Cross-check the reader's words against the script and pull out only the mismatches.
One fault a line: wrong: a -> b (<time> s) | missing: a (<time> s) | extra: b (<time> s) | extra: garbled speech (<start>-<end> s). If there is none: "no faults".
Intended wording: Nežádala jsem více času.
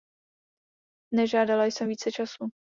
no faults